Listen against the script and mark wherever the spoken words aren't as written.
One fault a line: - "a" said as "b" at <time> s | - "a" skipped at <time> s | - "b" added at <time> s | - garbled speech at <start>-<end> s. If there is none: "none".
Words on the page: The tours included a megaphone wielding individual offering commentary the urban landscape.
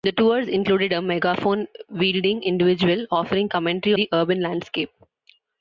none